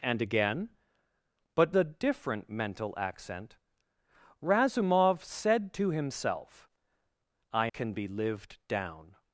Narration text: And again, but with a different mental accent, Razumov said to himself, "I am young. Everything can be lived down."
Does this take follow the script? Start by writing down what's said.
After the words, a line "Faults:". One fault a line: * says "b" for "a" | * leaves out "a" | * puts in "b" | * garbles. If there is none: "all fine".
And again, but a different mental accent, Razumov said to himself, "I can be lived down."
Faults:
* leaves out "with"
* leaves out "am young Everything"